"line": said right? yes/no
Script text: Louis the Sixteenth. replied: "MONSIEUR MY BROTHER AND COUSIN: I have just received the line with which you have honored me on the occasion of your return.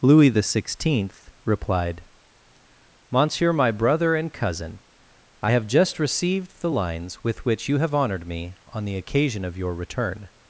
no